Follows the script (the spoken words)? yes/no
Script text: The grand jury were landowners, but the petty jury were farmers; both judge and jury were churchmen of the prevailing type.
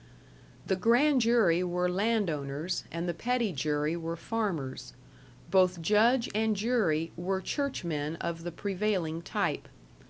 no